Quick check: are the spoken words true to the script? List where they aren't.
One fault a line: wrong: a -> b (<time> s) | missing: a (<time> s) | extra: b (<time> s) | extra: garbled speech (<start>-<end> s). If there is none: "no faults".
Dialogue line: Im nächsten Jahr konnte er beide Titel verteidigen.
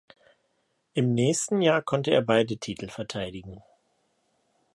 no faults